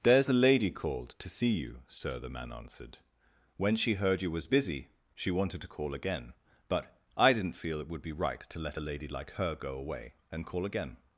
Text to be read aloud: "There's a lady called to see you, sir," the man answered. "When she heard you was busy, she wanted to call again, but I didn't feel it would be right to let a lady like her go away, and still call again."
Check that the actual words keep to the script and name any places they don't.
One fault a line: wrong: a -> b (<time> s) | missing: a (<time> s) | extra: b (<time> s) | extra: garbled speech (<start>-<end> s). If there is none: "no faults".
missing: still (10.5 s)